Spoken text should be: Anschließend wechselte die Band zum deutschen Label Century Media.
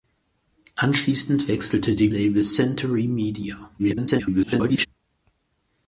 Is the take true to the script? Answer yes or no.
no